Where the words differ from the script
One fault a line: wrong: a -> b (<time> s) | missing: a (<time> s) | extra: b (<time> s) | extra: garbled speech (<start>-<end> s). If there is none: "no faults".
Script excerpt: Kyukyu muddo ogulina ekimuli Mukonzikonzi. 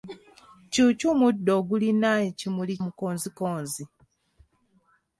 no faults